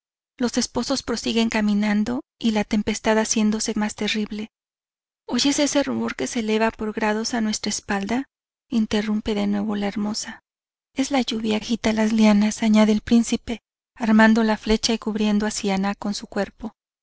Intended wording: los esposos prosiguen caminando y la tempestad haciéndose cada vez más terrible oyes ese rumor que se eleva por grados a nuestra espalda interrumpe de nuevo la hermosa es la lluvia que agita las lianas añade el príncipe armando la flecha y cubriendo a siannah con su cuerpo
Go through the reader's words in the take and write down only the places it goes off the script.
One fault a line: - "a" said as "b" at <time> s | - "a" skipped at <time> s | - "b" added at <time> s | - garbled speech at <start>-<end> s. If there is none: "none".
- "cada vez" skipped at 3.8 s
- "que" skipped at 11.6 s